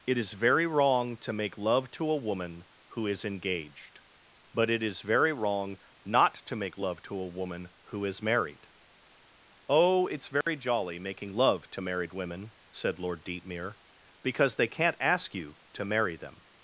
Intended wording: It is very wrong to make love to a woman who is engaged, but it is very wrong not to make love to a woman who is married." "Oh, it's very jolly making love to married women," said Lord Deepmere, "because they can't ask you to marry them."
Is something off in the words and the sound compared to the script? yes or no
yes